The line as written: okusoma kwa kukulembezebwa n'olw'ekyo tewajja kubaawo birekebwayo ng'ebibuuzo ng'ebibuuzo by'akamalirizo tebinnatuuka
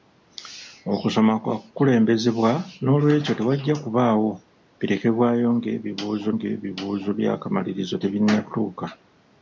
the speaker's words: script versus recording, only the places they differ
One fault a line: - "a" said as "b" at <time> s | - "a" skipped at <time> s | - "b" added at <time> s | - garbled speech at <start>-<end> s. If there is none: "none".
none